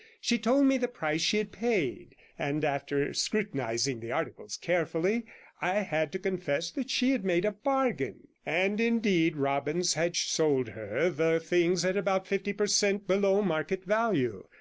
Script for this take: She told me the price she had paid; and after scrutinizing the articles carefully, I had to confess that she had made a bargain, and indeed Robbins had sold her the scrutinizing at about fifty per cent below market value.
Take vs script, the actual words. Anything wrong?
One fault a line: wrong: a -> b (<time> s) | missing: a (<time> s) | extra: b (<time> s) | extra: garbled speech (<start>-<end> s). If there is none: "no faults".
wrong: scrutinizing -> things (11.4 s)